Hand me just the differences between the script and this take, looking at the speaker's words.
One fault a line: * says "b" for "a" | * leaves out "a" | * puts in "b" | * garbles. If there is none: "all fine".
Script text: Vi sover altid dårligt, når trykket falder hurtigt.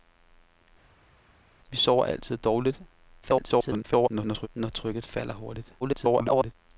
* garbles
* garbles